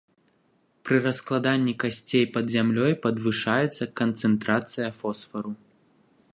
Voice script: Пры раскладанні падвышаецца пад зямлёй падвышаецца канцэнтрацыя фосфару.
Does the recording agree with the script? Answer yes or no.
no